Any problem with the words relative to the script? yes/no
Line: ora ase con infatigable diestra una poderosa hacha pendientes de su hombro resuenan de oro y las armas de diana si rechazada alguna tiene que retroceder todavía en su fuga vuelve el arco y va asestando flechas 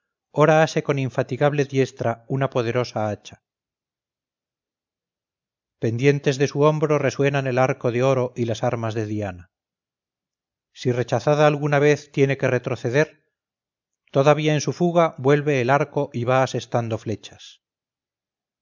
yes